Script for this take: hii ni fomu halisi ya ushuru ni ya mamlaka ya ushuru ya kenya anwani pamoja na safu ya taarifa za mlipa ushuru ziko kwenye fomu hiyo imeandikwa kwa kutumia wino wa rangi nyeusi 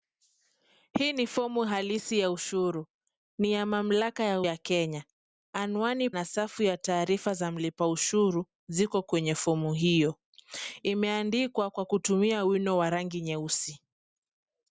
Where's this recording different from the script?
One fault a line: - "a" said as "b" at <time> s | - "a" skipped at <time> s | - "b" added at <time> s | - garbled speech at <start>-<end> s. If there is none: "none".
- "ushuru" skipped at 4.4 s
- "pamoja" skipped at 6.1 s